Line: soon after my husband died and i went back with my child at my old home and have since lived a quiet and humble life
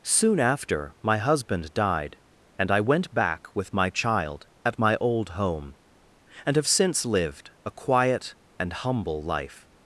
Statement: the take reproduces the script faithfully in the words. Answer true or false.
true